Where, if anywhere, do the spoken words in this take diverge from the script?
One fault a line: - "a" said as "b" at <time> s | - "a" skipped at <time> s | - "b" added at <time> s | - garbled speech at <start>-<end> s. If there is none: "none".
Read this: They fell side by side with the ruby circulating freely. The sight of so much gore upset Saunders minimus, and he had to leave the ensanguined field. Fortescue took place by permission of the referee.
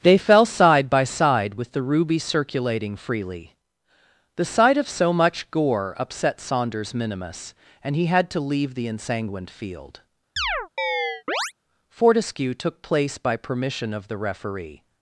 none